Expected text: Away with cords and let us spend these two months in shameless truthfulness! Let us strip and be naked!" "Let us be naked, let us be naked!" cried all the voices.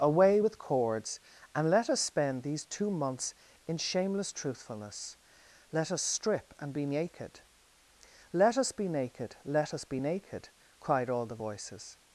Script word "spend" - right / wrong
right